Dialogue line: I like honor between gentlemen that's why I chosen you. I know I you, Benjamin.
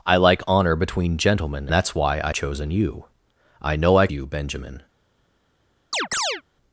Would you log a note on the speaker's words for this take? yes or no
no